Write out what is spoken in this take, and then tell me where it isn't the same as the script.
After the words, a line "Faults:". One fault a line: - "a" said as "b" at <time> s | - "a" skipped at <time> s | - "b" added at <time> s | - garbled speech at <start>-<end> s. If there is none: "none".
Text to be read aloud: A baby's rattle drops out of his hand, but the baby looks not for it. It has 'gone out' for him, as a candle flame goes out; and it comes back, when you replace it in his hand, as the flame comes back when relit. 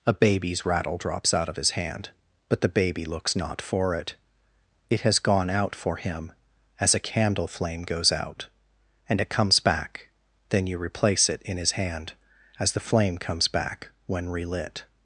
A baby's rattle drops out of his hand, but the baby looks not for it. It has 'gone out' for him, as a candle flame goes out; and it comes back, then you replace it in his hand, as the flame comes back when relit.
Faults:
- "when" said as "then" at 10.5 s